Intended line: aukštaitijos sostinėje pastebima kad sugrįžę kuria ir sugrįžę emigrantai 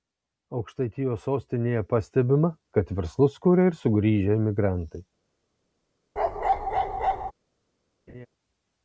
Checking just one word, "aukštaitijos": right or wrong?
right